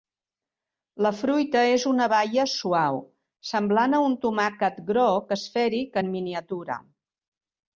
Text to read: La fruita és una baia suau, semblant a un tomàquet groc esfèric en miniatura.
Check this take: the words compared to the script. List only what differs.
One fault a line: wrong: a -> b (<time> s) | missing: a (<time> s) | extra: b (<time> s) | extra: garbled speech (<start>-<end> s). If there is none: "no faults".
no faults